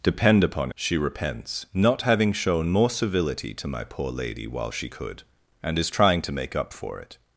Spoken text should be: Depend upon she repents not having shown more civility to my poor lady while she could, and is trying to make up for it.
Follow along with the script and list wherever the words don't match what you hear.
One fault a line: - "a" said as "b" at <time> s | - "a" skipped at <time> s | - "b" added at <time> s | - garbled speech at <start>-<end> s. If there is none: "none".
none